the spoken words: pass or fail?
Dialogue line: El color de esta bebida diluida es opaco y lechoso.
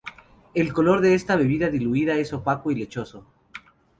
pass